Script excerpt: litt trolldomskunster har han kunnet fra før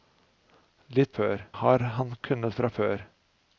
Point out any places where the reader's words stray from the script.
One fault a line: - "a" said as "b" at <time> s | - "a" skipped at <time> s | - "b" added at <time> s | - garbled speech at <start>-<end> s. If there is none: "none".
- "trolldomskunster" said as "før" at 1.2 s